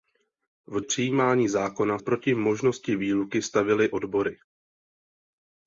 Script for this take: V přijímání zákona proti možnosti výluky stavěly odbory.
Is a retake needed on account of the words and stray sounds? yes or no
no